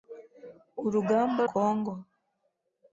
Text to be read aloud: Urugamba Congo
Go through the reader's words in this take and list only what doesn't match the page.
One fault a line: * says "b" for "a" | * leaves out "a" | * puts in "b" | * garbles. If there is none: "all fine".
all fine